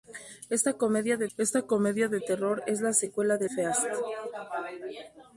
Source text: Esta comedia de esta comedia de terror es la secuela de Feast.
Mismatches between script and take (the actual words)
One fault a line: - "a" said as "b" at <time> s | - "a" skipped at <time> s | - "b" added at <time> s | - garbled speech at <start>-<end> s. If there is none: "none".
none